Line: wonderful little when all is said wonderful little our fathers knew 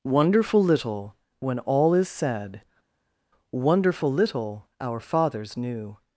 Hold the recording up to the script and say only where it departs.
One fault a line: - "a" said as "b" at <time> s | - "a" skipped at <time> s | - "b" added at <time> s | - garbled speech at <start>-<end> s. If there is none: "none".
none